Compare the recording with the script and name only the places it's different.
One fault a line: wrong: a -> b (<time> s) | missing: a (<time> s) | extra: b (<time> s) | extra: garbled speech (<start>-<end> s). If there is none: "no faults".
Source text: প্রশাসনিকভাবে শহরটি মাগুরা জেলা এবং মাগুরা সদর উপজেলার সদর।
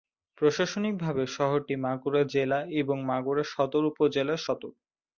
no faults